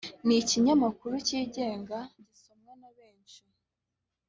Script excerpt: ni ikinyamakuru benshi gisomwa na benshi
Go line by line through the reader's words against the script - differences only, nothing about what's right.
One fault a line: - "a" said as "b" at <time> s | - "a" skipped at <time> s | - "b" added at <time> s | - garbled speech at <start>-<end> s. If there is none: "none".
- "benshi" said as "cyigenga" at 1.3 s